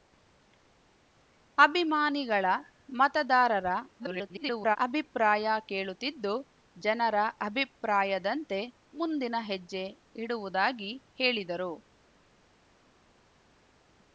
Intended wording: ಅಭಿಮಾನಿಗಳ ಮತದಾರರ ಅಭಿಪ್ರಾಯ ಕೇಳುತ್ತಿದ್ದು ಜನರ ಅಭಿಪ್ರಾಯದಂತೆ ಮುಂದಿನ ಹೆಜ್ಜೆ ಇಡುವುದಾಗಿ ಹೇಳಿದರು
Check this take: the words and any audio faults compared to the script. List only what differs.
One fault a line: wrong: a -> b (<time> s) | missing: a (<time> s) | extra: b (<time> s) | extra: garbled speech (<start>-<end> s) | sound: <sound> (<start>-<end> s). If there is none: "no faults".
extra: garbled speech (4.0-4.8 s)